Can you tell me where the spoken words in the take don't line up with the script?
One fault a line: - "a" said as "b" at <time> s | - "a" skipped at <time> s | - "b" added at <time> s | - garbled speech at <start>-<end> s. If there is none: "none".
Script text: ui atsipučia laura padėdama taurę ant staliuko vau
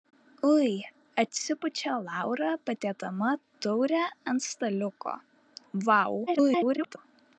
- garbled speech at 6.3-7.0 s